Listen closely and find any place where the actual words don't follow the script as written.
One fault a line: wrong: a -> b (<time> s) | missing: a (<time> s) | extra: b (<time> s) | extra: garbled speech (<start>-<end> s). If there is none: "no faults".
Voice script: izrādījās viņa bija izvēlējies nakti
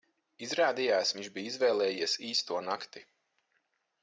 wrong: viņa -> viņš (1.2 s)
extra: īsto (2.3 s)